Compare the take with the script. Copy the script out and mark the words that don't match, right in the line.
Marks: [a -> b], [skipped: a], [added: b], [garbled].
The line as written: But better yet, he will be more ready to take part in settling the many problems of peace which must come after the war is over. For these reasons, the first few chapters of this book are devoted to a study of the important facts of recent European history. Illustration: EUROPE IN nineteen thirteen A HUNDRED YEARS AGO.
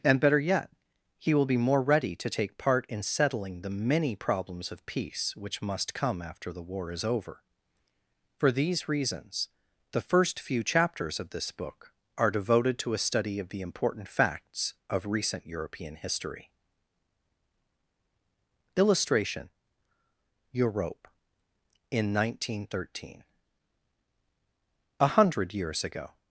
[But -> And] better yet, he will be more ready to take part in settling the many problems of peace which must come after the war is over. For these reasons, the first few chapters of this book are devoted to a study of the important facts of recent European history. Illustration: EUROPE IN nineteen thirteen A HUNDRED YEARS AGO.